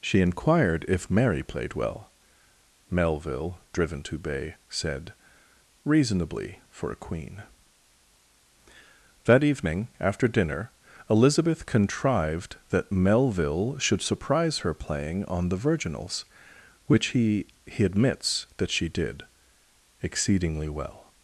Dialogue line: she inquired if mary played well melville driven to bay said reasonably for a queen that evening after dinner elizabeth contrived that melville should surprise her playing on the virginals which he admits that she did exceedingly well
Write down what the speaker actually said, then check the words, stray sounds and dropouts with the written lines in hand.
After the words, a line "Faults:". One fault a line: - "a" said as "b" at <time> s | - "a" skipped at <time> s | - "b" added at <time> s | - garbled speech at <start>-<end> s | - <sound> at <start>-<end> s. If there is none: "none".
she inquired if mary played well melville driven to bay said reasonably for a queen that evening after dinner elizabeth contrived that melville should surprise her playing on the virginals which he he admits that she did exceedingly well
Faults:
- "he" added at 17.7 s